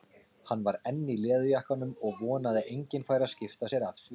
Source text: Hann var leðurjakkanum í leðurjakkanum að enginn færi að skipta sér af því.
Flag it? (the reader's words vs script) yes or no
yes